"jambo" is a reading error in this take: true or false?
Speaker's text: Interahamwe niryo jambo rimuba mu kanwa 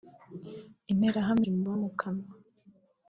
true